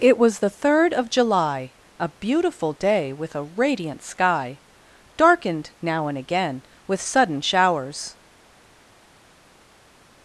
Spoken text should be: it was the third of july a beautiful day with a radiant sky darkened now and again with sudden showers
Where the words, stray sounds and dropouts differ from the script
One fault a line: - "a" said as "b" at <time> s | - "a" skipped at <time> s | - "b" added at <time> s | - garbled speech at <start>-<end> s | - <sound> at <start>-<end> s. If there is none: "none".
none